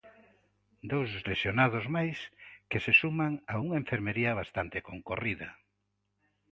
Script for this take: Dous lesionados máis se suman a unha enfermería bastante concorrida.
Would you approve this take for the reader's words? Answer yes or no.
no